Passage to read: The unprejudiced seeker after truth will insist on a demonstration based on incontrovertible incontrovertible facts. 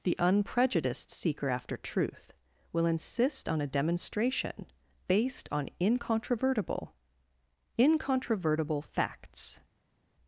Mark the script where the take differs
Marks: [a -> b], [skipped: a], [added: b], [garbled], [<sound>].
The unprejudiced seeker after truth will insist on a demonstration based on incontrovertible incontrovertible facts.